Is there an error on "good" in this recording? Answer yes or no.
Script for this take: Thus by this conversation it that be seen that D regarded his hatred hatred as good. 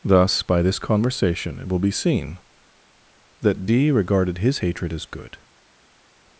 no